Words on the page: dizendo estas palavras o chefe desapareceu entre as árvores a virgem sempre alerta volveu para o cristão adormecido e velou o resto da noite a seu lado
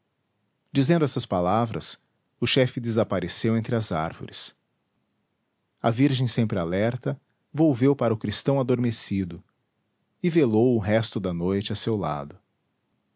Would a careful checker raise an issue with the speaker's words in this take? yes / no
no